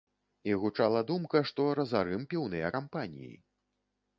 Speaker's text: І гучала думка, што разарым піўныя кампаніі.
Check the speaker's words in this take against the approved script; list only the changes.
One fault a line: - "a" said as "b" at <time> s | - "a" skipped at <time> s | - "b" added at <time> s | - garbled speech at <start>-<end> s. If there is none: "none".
none